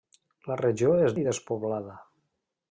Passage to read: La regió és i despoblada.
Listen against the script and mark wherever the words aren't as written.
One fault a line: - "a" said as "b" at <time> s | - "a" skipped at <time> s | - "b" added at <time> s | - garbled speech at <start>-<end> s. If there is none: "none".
none